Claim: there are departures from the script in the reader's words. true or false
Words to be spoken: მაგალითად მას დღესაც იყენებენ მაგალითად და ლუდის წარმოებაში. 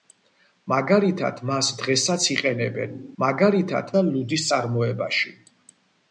false